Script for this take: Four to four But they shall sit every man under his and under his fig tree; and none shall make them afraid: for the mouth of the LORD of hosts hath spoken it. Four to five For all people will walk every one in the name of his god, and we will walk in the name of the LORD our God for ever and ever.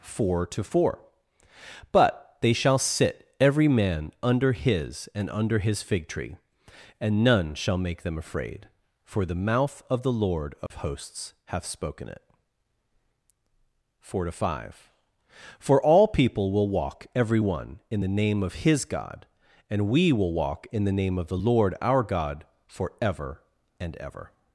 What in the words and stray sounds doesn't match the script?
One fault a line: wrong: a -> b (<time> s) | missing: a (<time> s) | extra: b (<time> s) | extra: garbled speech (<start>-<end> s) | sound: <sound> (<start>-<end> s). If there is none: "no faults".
sound: dropout (10.7-10.7 s)